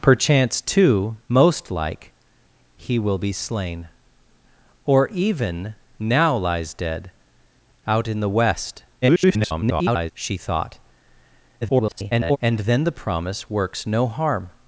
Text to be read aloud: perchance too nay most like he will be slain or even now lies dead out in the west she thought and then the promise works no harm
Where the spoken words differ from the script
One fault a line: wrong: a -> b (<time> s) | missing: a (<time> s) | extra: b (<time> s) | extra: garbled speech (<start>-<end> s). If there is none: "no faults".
missing: nay (1.1 s)
extra: garbled speech (9.0-10.1 s)
extra: garbled speech (11.6-12.4 s)